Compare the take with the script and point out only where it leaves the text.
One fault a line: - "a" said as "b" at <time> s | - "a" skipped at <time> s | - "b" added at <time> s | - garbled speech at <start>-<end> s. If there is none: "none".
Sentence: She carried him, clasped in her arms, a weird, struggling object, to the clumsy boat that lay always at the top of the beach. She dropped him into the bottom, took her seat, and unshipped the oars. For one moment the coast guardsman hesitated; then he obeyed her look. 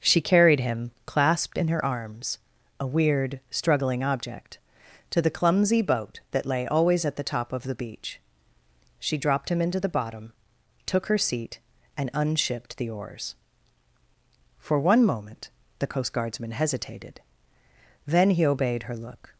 none